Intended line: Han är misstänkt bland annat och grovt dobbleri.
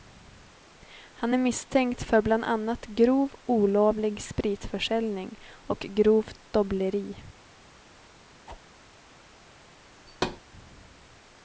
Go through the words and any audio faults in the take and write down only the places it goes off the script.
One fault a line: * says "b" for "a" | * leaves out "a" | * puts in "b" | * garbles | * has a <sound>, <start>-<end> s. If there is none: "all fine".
* puts in "för"
* puts in "grov olovlig spritförsäljning"
* has a whoosh, 8.5-8.6 s
* has a thud, 10.1-10.4 s